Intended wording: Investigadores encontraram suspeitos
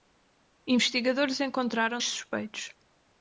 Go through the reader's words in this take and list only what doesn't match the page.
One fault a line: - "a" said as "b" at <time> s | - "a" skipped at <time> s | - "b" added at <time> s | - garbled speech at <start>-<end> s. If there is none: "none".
none